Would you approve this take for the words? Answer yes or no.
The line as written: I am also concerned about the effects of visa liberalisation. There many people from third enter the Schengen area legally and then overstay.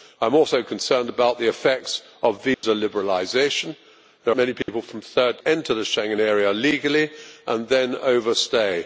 yes